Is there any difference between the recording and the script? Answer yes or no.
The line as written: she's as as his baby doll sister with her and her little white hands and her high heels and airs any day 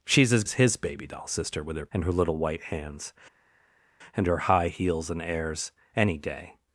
no